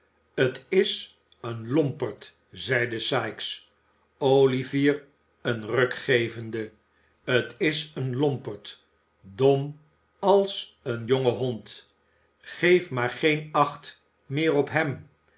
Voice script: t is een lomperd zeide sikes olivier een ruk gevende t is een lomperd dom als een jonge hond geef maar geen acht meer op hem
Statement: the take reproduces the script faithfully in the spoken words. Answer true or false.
true